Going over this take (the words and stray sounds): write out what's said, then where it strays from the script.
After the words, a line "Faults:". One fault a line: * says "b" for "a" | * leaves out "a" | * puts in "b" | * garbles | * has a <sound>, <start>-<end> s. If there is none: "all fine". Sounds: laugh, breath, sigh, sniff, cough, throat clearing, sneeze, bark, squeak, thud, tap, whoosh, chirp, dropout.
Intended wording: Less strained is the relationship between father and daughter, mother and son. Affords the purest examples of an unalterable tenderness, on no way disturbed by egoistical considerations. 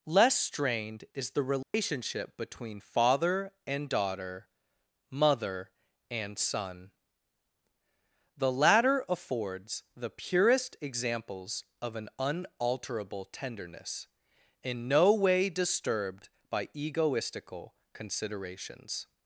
Less strained is the relationship between father and daughter, mother and son. The latter affords the purest examples of an unalterable tenderness, in no way disturbed by egoistical considerations.
Faults:
* has a dropout, 1.6-1.7 s
* puts in "The latter"
* says "in" for "on"